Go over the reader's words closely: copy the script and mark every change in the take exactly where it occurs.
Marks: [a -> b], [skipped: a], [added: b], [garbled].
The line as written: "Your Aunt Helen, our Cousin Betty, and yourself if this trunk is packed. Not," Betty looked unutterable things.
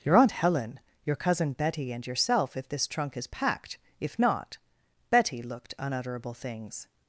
"Your Aunt Helen, [our -> your] Cousin Betty, and yourself if this trunk is packed. [added: If] Not," Betty looked unutterable things.